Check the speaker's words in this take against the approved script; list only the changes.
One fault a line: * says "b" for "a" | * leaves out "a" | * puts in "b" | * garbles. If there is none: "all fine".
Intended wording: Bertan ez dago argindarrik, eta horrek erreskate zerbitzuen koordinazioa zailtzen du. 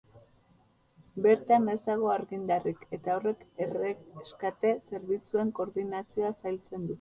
all fine